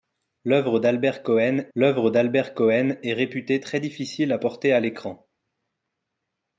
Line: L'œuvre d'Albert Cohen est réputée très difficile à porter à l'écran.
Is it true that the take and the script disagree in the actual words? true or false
true